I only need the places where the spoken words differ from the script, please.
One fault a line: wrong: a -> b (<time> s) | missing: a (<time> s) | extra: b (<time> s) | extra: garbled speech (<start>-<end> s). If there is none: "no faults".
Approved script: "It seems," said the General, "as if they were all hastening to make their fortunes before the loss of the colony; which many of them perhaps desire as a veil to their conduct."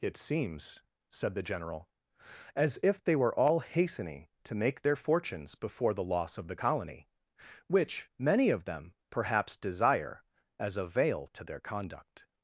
no faults